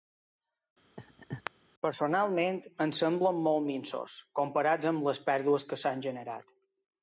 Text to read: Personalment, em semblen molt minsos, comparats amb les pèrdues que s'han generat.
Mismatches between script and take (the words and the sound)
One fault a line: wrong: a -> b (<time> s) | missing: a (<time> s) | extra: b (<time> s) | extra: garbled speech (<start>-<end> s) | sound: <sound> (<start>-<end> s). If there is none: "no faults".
sound: laugh (1.0-1.5 s)